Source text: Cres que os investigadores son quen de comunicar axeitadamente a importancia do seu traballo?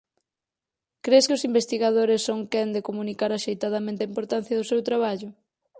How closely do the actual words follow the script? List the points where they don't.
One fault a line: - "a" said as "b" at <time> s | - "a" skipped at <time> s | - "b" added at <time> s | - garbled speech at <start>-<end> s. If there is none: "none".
none